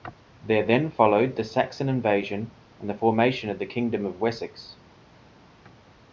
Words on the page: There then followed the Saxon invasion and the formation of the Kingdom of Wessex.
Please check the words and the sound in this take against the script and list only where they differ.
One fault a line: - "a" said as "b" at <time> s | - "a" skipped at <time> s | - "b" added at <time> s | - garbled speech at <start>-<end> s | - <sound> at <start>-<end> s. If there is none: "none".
none